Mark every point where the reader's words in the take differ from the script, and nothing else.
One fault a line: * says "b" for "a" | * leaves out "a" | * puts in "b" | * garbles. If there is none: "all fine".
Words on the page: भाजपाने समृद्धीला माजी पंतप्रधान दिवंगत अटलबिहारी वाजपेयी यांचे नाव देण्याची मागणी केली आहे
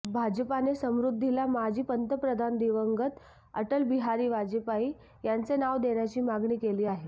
all fine